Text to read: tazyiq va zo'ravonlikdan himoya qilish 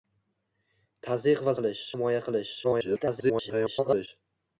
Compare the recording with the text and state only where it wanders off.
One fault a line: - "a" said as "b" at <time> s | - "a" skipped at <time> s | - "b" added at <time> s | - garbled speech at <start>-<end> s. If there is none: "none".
- "zo'ravonlikdan" said as "qilish" at 1.6 s
- garbled speech at 2.6-4.1 s